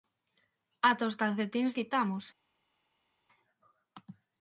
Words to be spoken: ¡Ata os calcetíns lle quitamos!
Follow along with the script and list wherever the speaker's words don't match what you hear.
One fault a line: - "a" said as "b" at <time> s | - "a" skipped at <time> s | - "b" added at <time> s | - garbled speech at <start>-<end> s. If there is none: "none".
- "lle" skipped at 1.7 s